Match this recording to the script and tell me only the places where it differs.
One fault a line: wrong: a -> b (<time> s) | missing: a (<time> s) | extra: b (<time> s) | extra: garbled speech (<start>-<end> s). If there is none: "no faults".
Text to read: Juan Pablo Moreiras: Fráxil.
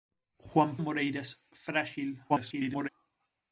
missing: Pablo (0.8 s)
extra: garbled speech (2.3-2.9 s)